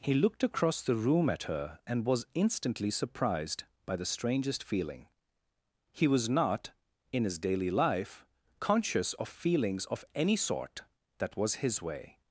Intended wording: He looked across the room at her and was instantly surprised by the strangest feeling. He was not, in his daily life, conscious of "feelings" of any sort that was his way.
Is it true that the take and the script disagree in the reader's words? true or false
false